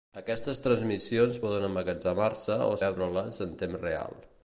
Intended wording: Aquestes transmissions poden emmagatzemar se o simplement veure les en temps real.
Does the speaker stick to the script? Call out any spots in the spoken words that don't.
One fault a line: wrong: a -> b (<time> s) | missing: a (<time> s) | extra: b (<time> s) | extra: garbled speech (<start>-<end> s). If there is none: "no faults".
missing: simplement (2.8 s)